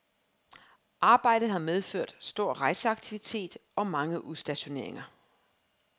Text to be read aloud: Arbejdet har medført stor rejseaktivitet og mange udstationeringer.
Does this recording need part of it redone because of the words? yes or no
no